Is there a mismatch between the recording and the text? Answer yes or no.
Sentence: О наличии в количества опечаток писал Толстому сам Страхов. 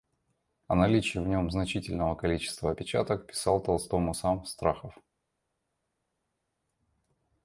yes